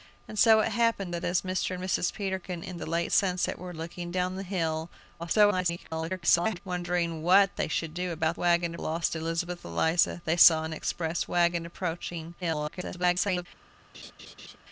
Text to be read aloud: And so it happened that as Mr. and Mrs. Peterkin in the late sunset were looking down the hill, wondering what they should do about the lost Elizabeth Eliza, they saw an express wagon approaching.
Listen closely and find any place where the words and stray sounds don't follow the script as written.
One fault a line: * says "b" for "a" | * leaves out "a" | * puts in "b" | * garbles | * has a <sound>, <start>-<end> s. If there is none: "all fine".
* garbles
* says "wagon" for "the"
* garbles
* has a laugh, 13.9-14.6 s